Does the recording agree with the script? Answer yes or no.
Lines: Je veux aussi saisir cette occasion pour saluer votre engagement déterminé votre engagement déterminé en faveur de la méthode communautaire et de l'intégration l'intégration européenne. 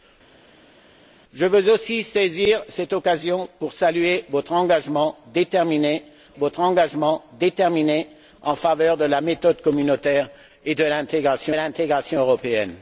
yes